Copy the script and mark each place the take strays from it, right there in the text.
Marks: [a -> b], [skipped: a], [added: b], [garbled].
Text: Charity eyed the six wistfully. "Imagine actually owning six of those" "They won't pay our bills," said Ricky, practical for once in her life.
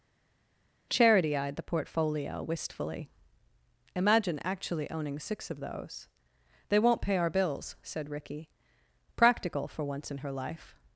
Charity eyed the [six -> portfolio] wistfully. "Imagine actually owning six of those" "They won't pay our bills," said Ricky, practical for once in her life.